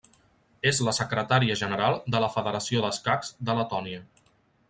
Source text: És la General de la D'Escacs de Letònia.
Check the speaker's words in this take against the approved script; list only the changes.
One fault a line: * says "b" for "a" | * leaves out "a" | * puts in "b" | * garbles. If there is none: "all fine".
* puts in "Secretària"
* puts in "Federació"